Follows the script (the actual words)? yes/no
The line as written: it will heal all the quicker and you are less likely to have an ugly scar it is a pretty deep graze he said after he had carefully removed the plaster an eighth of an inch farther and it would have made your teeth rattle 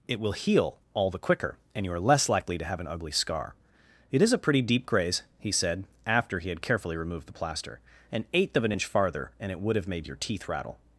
yes